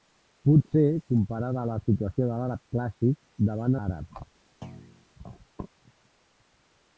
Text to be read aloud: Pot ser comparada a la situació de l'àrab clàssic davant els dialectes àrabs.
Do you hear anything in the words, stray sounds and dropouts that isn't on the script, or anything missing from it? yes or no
yes